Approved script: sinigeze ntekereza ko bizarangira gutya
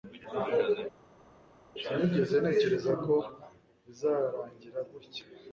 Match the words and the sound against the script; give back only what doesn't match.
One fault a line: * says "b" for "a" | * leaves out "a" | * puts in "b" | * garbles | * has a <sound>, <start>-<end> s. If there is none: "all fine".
all fine